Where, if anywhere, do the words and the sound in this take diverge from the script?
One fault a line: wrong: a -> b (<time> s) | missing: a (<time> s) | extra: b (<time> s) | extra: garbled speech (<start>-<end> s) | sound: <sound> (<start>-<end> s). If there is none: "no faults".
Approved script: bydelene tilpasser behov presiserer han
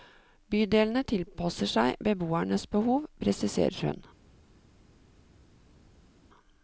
extra: seg beboernes (1.7 s)
wrong: han -> hun (3.9 s)